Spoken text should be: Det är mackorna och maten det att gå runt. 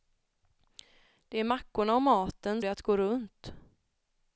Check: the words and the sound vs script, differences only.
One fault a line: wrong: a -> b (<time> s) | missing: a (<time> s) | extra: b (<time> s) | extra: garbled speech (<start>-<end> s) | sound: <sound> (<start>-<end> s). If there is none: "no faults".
no faults